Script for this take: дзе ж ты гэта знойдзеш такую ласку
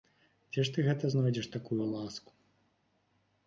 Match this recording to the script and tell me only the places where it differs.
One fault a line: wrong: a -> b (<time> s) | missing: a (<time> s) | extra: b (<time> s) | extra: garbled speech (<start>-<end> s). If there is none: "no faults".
no faults